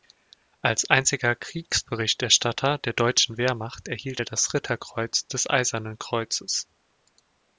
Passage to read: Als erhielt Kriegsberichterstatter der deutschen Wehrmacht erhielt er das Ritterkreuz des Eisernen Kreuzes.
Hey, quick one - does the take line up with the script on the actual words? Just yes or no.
no